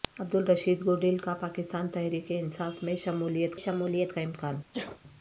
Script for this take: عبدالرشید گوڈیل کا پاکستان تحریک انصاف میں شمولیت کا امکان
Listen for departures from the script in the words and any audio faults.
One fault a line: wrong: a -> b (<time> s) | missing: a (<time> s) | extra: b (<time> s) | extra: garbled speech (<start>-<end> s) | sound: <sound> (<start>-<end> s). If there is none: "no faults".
extra: شمولیت (3.6 s)
sound: sneeze (4.7-5.0 s)